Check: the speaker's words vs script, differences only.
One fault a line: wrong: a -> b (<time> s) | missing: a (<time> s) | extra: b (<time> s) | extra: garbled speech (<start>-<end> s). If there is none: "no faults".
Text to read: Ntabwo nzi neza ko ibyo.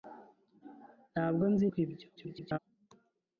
missing: neza (1.7 s)
extra: garbled speech (2.2-2.6 s)